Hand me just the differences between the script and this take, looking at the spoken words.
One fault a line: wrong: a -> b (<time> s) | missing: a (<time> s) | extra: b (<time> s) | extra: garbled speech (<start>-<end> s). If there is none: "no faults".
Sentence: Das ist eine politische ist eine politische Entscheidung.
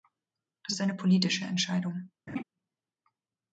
missing: ist eine politische (1.4 s)